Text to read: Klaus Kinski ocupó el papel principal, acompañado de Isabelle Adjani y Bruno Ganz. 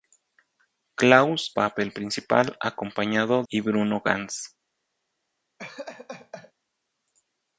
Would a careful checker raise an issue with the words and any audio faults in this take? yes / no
yes